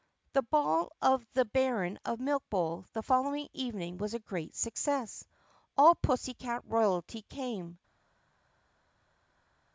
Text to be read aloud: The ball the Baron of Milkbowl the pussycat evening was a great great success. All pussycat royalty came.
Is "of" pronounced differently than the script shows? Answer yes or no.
no